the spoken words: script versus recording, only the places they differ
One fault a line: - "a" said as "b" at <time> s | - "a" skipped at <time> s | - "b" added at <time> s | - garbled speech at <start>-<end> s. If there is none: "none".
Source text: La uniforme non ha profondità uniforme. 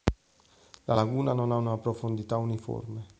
- "uniforme" said as "laguna" at 0.9 s
- "una" added at 1.6 s